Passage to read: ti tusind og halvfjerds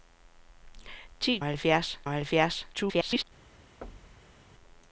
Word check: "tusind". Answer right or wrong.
wrong